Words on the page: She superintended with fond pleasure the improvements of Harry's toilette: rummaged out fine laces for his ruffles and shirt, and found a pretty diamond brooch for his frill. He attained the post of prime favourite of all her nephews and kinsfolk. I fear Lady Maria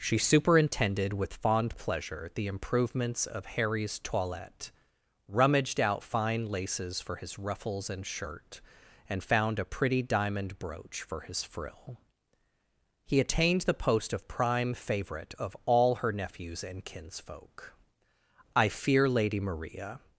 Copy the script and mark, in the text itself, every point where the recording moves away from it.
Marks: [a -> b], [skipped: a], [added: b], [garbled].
She superintended with fond pleasure the improvements of Harry's toilette: rummaged out fine laces for his ruffles and shirt, and found a pretty diamond brooch for his frill. He attained the post of prime favourite of all her nephews and kinsfolk. I fear Lady Maria